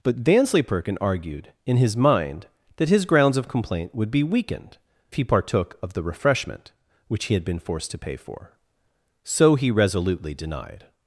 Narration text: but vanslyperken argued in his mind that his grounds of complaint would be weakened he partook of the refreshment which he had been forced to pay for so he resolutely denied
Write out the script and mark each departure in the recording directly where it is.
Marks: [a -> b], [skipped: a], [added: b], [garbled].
but vanslyperken argued in his mind that his grounds of complaint would be weakened he partook of the refreshment which he had been forced to pay for so he resolutely denied